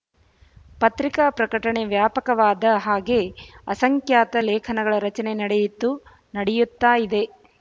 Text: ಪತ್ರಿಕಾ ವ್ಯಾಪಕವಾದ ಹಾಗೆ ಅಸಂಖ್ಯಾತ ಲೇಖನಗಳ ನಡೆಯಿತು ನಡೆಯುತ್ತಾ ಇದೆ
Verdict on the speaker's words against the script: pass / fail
fail